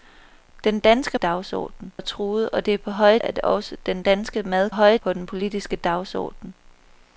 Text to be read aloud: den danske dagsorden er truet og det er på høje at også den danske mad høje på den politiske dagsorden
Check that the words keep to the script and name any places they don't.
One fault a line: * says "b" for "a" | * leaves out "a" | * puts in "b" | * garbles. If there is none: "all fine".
all fine